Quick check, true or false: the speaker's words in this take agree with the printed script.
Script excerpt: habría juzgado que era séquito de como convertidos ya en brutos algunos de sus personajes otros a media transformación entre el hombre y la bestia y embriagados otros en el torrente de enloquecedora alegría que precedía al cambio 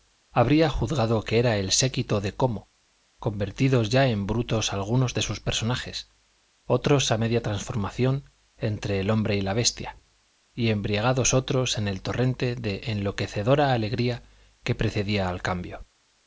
false